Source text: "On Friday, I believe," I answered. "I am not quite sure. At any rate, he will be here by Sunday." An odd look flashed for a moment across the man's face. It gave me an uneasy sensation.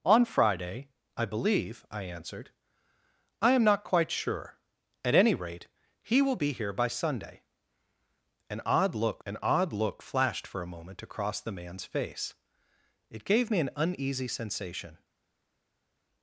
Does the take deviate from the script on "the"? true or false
false